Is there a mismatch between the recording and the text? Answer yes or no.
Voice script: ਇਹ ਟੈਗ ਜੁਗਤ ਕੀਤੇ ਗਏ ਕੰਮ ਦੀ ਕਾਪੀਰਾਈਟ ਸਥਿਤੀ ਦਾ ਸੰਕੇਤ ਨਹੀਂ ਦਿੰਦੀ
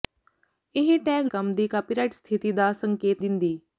yes